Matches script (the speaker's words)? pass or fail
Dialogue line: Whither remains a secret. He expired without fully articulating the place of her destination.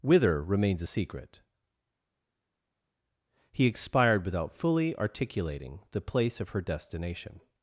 pass